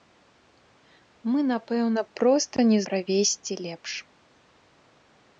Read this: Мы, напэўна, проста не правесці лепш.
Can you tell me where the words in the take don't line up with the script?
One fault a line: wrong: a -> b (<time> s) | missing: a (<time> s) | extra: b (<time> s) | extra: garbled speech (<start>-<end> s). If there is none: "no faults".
no faults